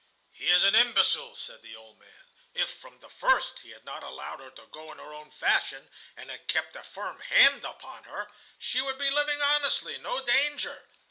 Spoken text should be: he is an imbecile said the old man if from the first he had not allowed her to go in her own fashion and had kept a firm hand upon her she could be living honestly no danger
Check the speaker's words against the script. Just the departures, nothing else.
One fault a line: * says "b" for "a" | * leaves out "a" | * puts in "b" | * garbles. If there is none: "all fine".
* says "would" for "could"